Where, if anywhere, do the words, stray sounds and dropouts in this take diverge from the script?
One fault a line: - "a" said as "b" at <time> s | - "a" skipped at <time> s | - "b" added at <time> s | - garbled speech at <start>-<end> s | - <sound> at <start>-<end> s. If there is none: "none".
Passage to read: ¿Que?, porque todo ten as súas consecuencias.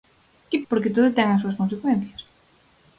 none